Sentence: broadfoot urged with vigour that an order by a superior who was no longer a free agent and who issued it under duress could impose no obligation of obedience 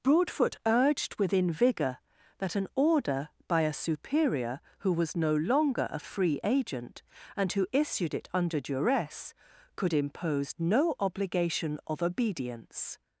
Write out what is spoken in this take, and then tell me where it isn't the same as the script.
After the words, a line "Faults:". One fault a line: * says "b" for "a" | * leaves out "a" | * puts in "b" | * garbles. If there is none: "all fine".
broadfoot urged within vigour that an order by a superior who was no longer a free agent and who issued it under duress could impose no obligation of obedience
Faults:
* says "within" for "with"